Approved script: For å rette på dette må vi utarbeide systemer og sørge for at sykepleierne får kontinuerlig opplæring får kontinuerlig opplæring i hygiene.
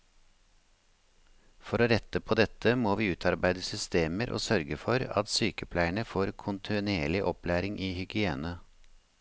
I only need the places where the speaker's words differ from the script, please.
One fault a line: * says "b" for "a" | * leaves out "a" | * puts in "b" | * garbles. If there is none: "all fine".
* leaves out "får kontinuerlig opplæring"